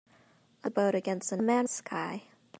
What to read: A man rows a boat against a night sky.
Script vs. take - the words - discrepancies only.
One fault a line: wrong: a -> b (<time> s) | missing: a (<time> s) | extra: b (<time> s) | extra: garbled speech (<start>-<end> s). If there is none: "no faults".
missing: man rows (0.7 s)
wrong: night -> man (1.4 s)